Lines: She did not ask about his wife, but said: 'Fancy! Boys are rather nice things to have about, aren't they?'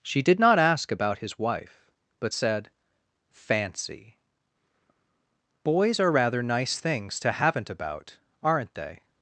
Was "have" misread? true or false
true